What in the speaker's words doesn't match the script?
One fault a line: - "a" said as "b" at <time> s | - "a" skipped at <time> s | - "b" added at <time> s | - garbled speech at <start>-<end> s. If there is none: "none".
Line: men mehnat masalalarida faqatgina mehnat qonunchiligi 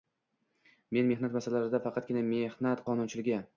none